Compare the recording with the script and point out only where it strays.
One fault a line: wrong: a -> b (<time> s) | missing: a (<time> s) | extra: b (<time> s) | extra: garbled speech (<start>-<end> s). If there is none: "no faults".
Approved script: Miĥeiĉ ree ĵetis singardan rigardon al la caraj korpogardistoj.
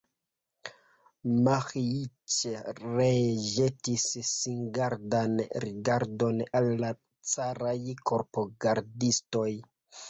no faults